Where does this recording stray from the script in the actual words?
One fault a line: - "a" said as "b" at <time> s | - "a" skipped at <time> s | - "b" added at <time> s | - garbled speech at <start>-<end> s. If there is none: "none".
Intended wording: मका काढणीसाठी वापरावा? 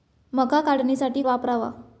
none